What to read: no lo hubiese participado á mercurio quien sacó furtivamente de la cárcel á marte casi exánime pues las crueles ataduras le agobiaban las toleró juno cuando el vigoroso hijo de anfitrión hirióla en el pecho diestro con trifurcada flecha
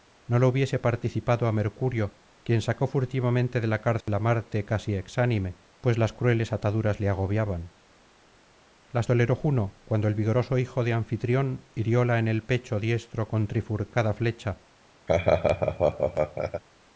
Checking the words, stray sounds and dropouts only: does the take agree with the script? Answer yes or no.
no